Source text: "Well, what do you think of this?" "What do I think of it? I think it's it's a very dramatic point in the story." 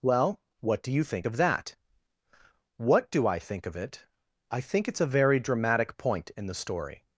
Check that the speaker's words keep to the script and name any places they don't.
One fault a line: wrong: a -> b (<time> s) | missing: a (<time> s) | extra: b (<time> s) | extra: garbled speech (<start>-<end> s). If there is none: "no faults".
wrong: this -> that (1.3 s)
missing: it's (5.0 s)